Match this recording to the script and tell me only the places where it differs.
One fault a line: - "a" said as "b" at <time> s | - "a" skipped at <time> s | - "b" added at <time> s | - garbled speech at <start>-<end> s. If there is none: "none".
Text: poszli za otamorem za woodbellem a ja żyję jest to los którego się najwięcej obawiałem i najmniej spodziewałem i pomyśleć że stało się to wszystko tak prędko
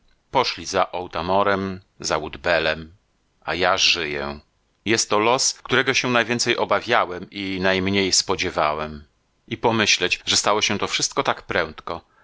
none